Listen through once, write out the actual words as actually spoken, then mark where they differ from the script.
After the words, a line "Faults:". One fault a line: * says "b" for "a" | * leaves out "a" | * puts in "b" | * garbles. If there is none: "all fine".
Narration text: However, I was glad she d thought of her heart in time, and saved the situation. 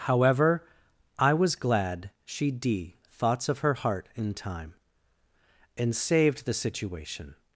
However, I was glad she d thoughts of her heart in time, and saved the situation.
Faults:
* says "thoughts" for "thought"